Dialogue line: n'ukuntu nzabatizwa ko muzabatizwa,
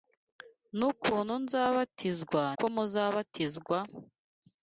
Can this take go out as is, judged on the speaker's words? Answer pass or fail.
pass